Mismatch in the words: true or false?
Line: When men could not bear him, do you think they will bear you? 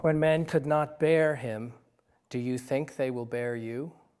false